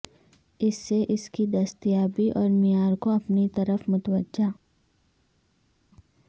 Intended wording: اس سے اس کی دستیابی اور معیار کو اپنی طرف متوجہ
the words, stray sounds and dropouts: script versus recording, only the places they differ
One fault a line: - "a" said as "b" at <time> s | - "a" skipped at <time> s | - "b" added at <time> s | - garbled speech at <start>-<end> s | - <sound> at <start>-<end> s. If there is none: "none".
none